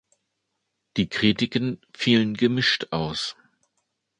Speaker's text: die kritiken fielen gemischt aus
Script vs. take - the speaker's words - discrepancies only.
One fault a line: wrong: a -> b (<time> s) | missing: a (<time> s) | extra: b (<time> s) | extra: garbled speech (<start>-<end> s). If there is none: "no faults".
no faults